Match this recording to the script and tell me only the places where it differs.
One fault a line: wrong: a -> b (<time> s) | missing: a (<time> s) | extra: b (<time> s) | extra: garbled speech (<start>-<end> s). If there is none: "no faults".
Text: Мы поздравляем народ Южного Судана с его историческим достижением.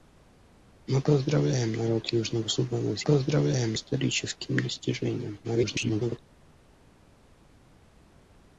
wrong: его -> поздравляем (3.0 s)
extra: garbled speech (5.4-6.2 s)